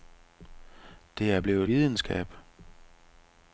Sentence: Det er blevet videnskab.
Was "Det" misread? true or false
false